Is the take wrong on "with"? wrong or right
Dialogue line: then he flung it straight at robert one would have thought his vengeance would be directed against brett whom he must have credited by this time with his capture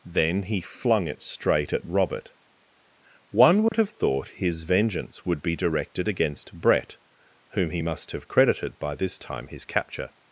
wrong